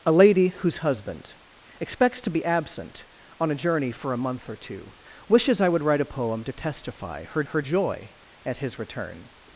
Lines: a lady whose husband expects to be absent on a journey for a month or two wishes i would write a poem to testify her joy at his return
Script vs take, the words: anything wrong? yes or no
yes